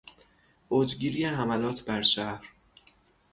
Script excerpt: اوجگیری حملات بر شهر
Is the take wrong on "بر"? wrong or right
right